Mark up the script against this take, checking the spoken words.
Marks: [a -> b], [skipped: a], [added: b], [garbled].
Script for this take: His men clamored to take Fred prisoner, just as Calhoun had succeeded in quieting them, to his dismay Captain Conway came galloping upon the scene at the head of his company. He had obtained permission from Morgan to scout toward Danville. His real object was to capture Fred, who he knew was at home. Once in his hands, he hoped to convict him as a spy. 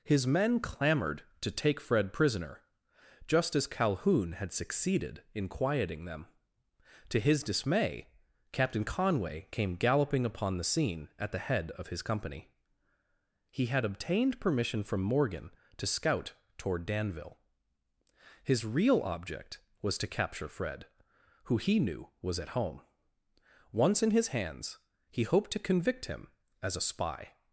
His men clamored to take Fred prisoner, just as Calhoun had succeeded in quieting them, to his dismay Captain Conway came galloping upon the scene at the head of his company. He had obtained permission from Morgan to scout toward Danville. His real object was to capture Fred, who he knew was at home. Once in his hands, he hoped to convict him as a spy.